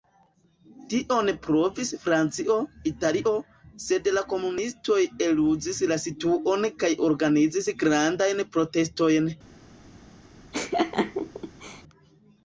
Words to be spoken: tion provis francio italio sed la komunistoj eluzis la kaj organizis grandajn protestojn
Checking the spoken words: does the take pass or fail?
fail